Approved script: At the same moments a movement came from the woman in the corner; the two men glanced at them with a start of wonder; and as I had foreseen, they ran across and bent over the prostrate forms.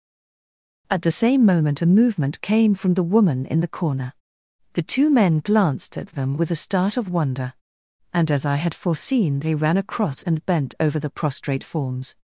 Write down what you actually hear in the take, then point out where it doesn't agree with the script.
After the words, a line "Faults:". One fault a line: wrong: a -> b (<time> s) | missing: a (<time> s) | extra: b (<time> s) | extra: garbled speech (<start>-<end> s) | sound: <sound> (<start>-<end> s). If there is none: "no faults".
At the same moment a movement came from the woman in the corner; the two men glanced at them with a start of wonder; and as I had foreseen, they ran across and bent over the prostrate forms.
Faults:
wrong: moments -> moment (1.5 s)